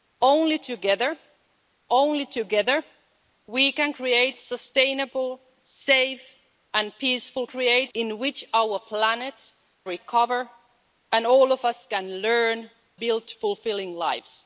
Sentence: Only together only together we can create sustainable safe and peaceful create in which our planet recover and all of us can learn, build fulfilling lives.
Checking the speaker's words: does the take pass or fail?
pass